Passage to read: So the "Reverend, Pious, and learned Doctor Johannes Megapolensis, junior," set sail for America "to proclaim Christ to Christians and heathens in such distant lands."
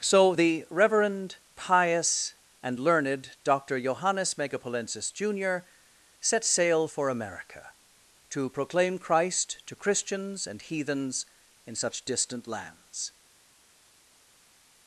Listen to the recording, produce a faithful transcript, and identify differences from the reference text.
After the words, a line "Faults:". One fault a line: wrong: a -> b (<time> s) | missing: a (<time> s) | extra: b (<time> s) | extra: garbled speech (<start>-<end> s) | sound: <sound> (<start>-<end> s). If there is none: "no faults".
So the "Reverend, Pious, and learned Doctor Johannes Megapolensis, junior," set sail for America "to proclaim Christ to Christians and heathens in such distant lands."
Faults:
no faults